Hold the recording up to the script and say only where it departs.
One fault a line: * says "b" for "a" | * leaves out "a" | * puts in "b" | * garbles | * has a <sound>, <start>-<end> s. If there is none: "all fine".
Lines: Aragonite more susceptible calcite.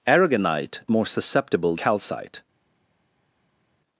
all fine